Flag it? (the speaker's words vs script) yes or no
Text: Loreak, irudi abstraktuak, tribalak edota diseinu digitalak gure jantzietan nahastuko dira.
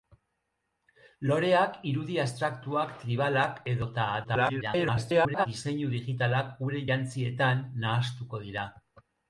yes